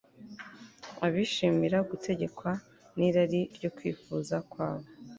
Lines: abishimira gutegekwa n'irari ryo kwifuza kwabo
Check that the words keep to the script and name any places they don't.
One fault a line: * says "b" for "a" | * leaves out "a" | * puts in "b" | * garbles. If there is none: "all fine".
all fine